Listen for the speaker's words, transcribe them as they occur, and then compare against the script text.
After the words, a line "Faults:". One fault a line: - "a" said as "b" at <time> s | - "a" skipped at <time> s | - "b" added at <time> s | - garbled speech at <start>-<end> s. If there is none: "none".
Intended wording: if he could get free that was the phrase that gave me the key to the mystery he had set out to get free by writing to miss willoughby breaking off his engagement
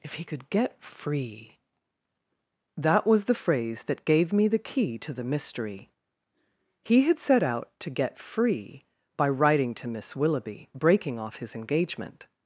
if he could get free that was the phrase that gave me the key to the mystery he had set out to get free by writing to miss willoughby breaking off his engagement
Faults:
none